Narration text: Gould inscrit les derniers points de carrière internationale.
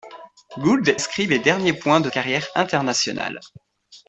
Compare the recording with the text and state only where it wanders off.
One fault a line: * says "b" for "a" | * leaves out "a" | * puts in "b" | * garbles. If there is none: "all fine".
all fine